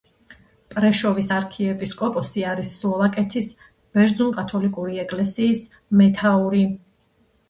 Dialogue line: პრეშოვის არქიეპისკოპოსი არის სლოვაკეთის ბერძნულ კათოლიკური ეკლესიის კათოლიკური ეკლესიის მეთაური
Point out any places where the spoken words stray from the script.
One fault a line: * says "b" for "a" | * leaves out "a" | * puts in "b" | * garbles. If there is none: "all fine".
* leaves out "კათოლიკური ეკლესიის"